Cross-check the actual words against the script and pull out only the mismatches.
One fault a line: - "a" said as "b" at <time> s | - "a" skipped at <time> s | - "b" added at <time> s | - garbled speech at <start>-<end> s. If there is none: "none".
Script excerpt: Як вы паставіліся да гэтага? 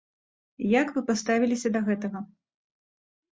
none